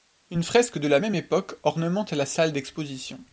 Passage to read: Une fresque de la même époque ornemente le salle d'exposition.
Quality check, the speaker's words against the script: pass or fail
fail